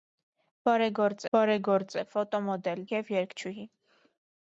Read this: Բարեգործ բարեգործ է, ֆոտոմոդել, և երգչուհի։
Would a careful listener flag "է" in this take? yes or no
no